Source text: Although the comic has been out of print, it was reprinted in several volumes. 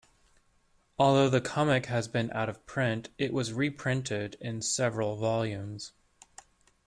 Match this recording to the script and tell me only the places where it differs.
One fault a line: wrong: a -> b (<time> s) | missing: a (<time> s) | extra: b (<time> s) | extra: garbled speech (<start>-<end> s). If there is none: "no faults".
no faults